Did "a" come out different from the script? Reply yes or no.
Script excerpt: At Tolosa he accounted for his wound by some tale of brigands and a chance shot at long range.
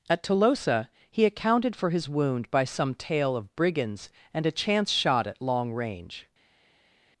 no